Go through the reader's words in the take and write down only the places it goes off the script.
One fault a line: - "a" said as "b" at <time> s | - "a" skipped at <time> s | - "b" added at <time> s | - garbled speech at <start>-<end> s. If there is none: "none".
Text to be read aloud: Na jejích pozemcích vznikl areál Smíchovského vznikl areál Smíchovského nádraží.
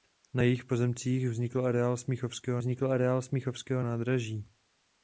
none